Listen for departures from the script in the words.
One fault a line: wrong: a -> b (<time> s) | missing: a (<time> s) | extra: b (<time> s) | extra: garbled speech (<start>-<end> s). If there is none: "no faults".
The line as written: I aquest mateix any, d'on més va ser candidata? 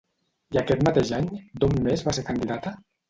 no faults